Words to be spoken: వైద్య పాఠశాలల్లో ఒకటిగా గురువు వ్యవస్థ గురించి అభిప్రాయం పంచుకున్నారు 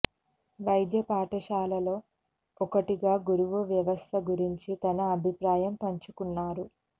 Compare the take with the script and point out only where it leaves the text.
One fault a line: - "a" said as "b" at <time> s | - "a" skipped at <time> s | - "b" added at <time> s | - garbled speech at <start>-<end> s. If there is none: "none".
- "తన" added at 4.8 s